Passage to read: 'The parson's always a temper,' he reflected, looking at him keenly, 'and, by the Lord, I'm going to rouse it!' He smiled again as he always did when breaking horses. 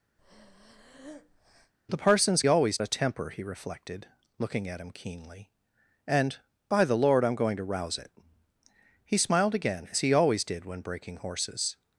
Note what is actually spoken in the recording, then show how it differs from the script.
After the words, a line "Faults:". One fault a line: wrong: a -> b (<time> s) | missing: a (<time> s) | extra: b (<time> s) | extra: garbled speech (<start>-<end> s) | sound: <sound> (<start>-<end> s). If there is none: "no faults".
'The parson's always a temper,' he reflected, looking at him keenly, 'and, by the Lord, I'm going to rouse it!' He smiled again as he always did when breaking horses.
Faults:
sound: breath (0.2-1.7 s)